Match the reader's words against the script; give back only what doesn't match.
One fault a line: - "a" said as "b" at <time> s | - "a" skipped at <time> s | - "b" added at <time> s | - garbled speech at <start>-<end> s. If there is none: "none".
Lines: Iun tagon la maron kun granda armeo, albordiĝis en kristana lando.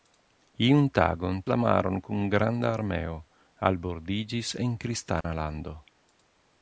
none